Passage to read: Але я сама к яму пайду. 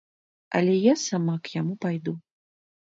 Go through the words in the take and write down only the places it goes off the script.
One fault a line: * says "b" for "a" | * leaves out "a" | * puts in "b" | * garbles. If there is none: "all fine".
all fine